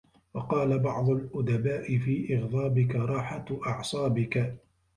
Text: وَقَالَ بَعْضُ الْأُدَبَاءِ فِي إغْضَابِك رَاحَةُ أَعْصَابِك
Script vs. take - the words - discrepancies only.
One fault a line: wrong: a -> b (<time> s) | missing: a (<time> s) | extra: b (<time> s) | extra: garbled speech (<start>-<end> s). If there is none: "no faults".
no faults